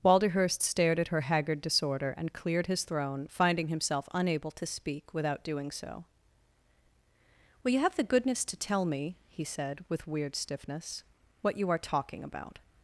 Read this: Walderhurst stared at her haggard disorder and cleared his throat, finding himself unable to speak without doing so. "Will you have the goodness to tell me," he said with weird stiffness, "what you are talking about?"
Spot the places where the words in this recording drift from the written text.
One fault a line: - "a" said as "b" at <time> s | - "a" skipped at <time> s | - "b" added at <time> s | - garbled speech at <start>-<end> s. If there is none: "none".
- "throat" said as "throne" at 2.8 s